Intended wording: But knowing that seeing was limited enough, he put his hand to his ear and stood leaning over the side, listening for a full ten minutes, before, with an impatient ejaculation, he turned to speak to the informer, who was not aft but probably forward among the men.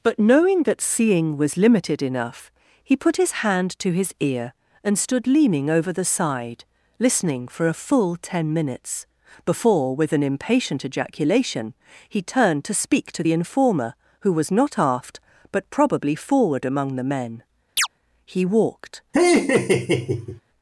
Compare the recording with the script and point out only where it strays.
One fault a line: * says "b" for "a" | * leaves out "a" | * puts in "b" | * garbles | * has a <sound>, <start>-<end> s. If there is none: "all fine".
* has a chirp, 17.8-17.9 s
* puts in "He walked"
* has a laugh, 19.1-20.4 s